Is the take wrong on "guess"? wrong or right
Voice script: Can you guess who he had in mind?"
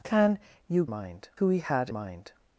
wrong